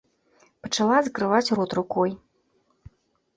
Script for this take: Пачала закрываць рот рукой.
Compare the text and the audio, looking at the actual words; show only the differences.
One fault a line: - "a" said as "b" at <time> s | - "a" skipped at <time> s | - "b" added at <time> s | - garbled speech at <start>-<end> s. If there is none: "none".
none